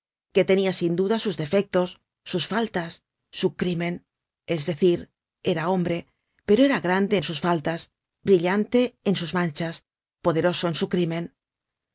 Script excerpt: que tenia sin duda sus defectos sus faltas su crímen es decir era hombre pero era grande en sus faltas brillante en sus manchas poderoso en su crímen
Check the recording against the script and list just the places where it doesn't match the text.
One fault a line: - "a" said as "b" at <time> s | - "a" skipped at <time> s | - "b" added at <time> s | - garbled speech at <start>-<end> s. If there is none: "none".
none